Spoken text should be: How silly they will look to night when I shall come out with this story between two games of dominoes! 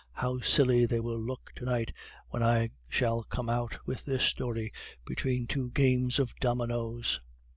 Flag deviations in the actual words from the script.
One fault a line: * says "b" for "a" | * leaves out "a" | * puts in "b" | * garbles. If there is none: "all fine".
all fine